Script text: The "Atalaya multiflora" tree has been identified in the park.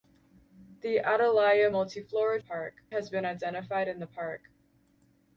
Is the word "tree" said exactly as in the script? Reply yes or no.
no